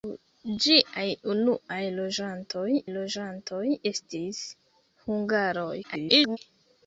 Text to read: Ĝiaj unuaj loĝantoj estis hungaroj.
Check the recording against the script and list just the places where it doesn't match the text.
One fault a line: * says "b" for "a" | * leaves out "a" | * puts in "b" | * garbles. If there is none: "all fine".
* puts in "loĝantoj"
* garbles